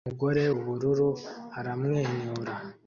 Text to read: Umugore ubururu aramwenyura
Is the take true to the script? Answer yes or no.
yes